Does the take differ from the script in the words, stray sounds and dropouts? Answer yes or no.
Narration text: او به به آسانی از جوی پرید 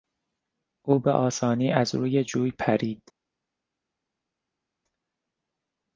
yes